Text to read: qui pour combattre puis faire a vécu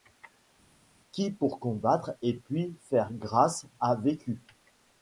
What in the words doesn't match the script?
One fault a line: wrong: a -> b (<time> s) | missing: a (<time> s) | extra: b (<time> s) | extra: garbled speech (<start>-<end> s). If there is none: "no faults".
extra: et (2.2 s)
extra: grâce (3.1 s)